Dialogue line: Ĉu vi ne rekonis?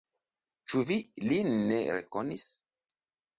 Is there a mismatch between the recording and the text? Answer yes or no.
yes